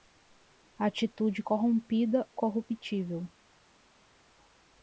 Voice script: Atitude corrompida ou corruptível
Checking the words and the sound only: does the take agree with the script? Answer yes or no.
no